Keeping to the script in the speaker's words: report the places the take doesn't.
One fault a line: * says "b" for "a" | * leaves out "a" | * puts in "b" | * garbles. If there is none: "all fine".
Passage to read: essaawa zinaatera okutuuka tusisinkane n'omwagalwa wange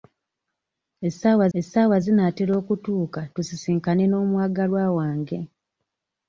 * puts in "essaawa"